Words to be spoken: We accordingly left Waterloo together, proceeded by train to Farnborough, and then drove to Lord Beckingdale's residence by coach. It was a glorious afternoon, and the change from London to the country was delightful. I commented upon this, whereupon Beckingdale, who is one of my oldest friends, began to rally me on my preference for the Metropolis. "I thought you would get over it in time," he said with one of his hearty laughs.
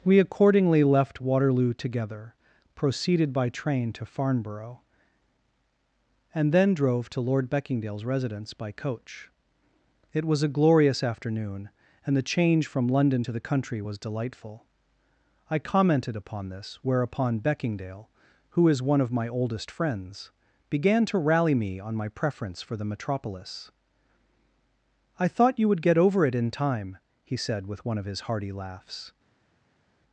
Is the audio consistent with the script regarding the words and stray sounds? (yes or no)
yes